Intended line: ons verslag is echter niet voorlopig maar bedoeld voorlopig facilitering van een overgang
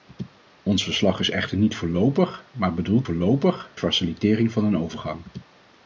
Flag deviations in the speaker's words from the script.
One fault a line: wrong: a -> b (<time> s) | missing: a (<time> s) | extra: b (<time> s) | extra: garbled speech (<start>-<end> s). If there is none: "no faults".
no faults